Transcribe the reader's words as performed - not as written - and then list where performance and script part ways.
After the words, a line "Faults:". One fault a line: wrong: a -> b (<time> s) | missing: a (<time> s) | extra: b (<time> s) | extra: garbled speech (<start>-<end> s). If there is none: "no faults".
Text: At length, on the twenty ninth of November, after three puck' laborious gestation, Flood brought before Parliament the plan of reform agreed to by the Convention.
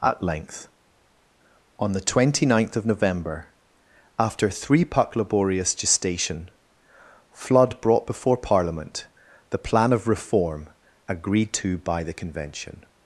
At length, on the twenty ninth of November, after three puck' laborious gestation, Flood brought before Parliament the plan of reform agreed to by the Convention.
Faults:
no faults